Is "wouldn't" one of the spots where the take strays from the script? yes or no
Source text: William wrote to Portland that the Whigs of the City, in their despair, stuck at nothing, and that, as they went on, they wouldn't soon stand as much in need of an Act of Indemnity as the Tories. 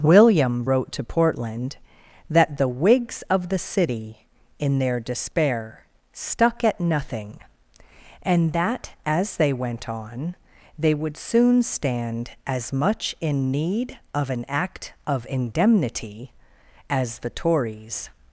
yes